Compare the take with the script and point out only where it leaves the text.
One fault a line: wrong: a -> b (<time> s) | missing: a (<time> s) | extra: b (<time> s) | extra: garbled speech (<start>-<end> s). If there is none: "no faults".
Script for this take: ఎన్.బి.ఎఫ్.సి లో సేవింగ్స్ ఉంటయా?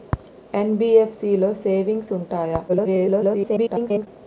extra: garbled speech (2.7-4.1 s)